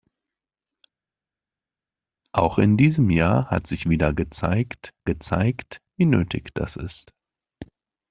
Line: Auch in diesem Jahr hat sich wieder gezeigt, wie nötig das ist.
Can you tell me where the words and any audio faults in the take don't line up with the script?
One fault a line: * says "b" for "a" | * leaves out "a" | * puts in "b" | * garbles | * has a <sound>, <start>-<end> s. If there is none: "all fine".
* puts in "gezeigt"